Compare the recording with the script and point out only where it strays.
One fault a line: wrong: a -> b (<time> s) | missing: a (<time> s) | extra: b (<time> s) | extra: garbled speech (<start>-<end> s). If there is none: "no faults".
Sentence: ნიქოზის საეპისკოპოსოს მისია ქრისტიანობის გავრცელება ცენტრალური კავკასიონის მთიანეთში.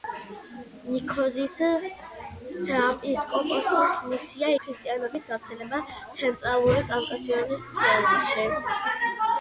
no faults